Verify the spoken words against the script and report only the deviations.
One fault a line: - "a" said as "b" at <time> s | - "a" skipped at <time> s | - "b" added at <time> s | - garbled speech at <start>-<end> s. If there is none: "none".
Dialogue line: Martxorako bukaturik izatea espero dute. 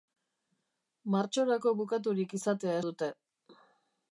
- "espero" skipped at 2.8 s